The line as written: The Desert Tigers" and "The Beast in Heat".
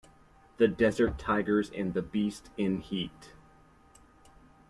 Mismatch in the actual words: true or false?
false